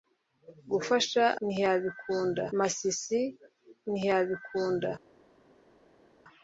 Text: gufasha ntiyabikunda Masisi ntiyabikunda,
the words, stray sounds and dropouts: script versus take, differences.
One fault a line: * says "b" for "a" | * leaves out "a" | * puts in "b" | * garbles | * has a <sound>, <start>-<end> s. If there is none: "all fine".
all fine